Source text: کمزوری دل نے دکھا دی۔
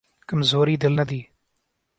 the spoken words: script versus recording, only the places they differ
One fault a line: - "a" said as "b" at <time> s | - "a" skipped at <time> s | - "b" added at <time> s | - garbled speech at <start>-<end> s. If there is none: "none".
- "دکھا" skipped at 1.0 s